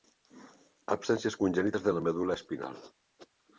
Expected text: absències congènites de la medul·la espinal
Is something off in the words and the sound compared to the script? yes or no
no